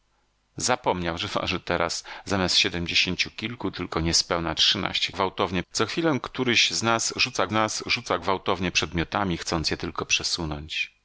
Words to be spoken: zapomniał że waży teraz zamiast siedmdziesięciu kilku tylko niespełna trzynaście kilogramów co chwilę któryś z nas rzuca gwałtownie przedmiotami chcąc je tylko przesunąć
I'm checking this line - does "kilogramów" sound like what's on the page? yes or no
no